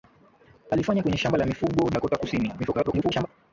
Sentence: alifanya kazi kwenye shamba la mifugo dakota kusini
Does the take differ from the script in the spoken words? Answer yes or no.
yes